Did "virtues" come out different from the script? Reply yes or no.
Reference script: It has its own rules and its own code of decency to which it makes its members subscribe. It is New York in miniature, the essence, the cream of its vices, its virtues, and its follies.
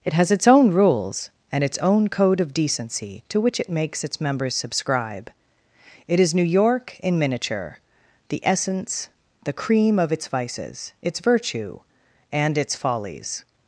yes